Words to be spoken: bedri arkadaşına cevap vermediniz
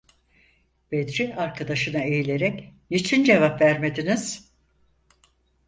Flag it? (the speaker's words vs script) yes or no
yes